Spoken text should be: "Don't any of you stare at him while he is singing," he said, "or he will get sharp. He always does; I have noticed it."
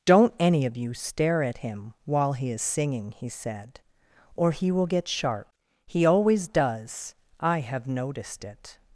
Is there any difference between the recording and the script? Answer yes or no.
no